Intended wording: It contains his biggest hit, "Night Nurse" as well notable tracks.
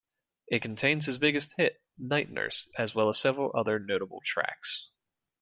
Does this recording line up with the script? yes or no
no